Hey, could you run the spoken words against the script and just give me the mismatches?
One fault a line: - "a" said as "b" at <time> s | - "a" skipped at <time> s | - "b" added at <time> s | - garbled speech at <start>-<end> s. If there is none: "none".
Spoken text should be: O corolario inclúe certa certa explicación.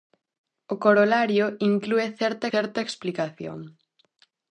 none